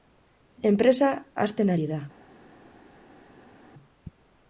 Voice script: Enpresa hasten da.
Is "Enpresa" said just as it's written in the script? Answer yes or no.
yes